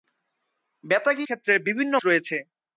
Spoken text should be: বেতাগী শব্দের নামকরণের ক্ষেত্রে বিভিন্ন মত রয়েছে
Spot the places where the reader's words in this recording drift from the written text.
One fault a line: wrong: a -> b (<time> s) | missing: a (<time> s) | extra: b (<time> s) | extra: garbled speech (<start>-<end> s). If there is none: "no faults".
missing: শব্দের নামকরণের (1.3 s)
missing: মত (1.9 s)